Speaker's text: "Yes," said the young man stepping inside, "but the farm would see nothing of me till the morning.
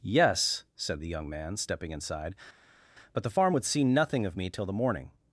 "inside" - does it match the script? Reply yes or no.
yes